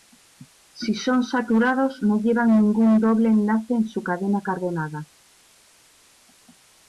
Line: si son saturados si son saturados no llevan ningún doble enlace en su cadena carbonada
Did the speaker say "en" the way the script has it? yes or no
yes